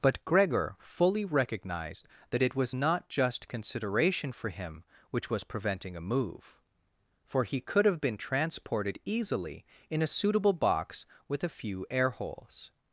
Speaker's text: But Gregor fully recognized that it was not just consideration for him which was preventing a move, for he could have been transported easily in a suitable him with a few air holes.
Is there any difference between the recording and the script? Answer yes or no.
yes